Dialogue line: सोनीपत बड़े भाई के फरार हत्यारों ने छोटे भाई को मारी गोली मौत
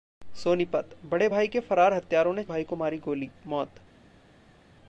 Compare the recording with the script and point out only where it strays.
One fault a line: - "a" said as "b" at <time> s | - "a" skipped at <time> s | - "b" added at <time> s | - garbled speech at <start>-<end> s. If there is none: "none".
- "छोटे" skipped at 2.4 s